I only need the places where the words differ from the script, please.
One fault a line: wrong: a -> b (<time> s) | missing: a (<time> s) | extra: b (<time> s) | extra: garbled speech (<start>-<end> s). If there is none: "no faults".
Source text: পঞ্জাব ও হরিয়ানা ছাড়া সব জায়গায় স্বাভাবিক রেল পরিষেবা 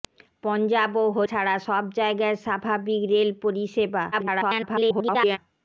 missing: হরিয়ানা (1.2 s)
extra: garbled speech (4.1-5.4 s)